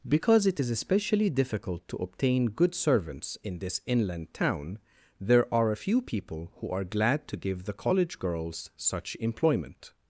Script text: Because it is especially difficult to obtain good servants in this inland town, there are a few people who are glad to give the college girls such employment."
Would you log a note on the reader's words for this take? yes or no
no